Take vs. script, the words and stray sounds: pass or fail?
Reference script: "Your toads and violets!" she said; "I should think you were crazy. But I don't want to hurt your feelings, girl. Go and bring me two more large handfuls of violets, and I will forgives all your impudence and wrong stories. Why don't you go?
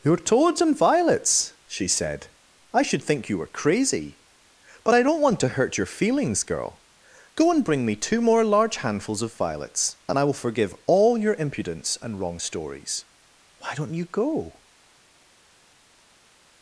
fail